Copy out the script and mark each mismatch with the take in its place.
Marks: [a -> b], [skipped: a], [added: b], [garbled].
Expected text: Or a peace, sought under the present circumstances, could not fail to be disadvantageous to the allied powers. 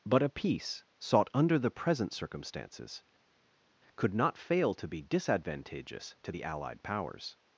[Or -> But] a peace, sought under the present circumstances, could not fail to be disadvantageous to the allied powers.